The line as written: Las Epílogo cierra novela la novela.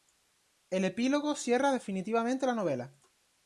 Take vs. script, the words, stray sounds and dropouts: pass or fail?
fail